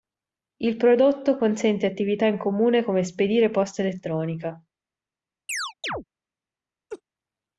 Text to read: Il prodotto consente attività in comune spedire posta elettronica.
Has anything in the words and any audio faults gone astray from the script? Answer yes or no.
yes